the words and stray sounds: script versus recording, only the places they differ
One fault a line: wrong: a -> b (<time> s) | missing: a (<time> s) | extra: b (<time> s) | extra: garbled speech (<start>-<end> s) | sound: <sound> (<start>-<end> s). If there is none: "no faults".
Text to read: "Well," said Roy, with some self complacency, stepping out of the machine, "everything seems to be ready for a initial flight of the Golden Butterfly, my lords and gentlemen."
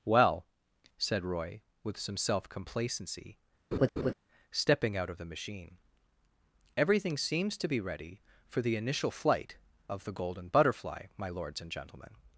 sound: laugh (3.7-4.1 s)
wrong: a -> the (8.6 s)